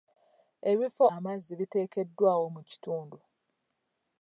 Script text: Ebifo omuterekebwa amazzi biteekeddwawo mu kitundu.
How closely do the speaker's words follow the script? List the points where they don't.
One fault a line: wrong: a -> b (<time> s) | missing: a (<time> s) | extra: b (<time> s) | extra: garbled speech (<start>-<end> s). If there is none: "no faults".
missing: omuterekebwa (1.0 s)